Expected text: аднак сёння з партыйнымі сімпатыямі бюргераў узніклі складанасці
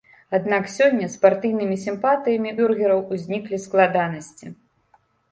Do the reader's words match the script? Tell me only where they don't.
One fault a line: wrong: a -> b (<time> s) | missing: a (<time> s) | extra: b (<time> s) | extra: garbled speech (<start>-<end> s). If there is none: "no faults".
no faults